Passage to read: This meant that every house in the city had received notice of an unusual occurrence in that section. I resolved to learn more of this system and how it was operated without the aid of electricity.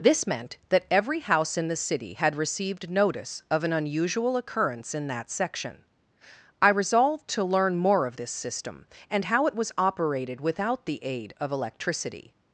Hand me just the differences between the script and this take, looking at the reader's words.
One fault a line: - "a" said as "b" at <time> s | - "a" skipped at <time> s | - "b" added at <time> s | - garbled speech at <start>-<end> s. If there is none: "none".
none